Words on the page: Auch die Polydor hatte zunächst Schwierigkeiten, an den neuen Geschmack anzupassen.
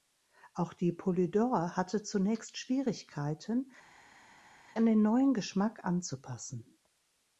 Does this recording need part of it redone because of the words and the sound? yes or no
no